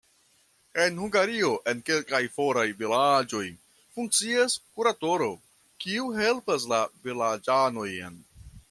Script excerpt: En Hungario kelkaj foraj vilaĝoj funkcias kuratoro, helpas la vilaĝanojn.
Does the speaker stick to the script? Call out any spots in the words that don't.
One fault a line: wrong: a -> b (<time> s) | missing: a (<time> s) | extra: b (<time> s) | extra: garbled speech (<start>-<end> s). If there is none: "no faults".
extra: en (1.7 s)
extra: kiu (5.8 s)